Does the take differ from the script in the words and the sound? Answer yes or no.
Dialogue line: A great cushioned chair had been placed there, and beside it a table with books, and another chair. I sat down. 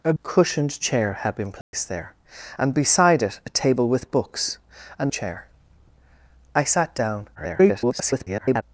yes